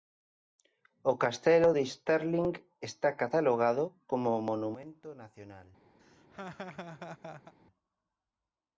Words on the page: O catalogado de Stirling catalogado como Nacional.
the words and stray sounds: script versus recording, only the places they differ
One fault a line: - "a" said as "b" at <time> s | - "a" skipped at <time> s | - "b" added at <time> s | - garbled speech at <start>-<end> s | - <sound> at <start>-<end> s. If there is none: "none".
- "catalogado" said as "castelo" at 1.2 s
- "está" added at 2.9 s
- "Monumento" added at 4.5 s
- laugh at 6.0-7.5 s